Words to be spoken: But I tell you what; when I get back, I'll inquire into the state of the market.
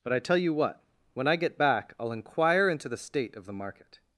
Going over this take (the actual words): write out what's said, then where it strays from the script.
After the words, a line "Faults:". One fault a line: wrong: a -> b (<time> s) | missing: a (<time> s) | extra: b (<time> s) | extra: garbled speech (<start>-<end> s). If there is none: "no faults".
But I tell you what; when I get back, I'll inquire into the state of the market.
Faults:
no faults